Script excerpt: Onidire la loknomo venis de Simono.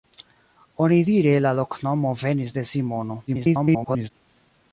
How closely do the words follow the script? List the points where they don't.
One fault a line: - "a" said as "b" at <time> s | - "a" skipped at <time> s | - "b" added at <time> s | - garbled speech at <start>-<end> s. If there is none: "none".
- garbled speech at 3.3-4.1 s